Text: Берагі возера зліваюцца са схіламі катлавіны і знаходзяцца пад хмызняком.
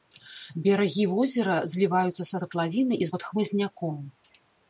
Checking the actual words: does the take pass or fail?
fail